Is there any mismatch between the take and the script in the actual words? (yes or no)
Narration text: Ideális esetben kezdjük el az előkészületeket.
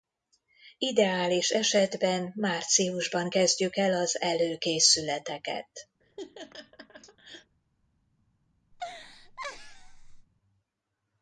yes